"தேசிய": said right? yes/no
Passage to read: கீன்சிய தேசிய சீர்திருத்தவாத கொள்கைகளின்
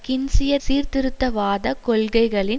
no